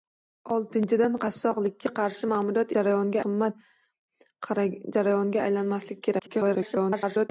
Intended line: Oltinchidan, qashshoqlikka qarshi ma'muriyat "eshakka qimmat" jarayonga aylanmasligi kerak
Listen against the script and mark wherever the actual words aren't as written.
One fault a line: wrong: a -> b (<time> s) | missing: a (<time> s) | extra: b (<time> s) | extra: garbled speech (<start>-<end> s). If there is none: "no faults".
wrong: eshakka -> jarayonga (2.8 s)
extra: garbled speech (6.2-7.3 s)